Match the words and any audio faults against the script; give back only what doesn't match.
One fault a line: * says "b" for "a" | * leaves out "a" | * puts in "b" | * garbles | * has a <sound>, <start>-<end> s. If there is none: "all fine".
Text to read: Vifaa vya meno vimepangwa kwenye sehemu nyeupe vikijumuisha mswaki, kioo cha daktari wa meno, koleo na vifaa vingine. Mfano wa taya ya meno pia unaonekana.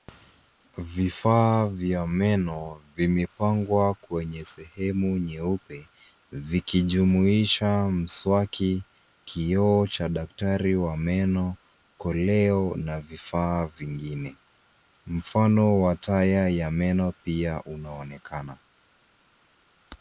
all fine